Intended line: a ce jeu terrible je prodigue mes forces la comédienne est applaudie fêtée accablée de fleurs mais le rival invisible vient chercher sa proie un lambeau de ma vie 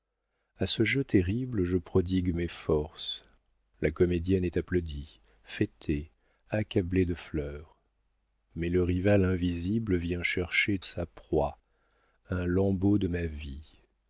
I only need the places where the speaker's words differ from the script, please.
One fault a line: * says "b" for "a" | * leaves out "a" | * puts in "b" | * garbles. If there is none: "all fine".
all fine